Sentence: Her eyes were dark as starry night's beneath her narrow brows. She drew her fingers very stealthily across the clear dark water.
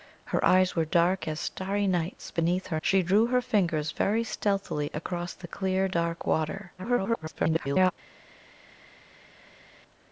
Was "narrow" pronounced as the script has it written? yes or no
no